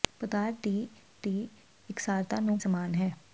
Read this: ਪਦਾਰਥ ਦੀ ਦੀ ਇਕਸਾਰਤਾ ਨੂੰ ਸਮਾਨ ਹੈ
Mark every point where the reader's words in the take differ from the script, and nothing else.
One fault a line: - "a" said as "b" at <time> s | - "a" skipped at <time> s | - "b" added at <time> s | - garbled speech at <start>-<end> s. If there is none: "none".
none